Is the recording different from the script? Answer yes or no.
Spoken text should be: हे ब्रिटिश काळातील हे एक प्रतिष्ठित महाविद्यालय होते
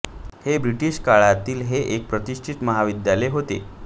no